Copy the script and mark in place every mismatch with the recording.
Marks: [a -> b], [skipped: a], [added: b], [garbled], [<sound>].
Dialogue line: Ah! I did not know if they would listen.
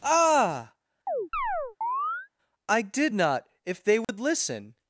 Ah! [chirp] I did not [skipped: know] if they would [dropout] listen.